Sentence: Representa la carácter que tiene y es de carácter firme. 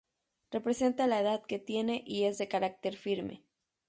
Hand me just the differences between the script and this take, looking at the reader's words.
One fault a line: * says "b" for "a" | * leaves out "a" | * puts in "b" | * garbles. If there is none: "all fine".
* says "edad" for "carácter"